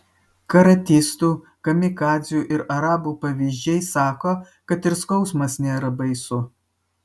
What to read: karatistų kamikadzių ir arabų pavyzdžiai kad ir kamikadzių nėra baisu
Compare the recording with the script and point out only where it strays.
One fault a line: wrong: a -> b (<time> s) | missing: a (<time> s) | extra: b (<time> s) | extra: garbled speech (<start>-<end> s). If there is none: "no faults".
extra: sako (3.9 s)
wrong: kamikadzių -> skausmas (5.0 s)